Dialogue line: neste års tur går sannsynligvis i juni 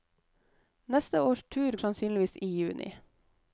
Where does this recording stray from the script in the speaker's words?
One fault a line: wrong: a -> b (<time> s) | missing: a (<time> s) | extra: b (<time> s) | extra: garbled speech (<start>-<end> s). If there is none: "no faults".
missing: går (1.8 s)